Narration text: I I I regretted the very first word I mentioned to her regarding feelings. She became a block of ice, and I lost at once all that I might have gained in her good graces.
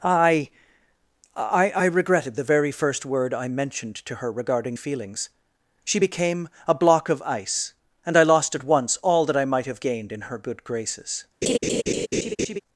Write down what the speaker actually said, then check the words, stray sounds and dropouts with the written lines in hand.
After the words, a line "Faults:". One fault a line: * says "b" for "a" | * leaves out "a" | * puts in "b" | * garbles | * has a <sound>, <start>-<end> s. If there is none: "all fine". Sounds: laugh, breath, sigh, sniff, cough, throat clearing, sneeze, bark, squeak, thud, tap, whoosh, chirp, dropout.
I I I regretted the very first word I mentioned to her regarding feelings. She became a block of ice, and I lost at once all that I might have gained in her good graces.
Faults:
* has a laugh, 11.4-12.6 s